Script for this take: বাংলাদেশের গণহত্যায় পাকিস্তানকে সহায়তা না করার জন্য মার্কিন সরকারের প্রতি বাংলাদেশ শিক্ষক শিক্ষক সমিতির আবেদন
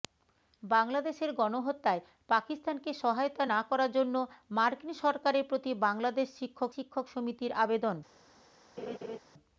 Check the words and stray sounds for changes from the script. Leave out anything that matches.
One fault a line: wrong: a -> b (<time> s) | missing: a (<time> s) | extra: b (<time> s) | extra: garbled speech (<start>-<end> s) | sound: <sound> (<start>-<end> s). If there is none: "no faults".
sound: laugh (8.8-9.2 s)